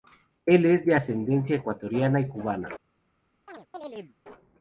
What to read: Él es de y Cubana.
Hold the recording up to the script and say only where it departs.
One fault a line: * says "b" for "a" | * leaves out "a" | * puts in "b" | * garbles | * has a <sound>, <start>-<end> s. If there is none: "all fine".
* puts in "ascendencia Ecuatoriana"
* has a chirp, 3.5-4.2 s